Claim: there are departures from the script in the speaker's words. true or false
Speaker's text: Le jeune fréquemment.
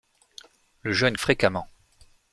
false